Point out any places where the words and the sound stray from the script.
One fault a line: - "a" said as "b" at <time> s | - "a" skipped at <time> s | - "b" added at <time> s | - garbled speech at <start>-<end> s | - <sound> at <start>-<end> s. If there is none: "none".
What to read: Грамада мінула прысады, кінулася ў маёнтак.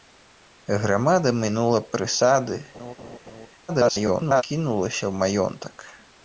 - laugh at 2.7-3.5 s
- garbled speech at 3.7-4.4 s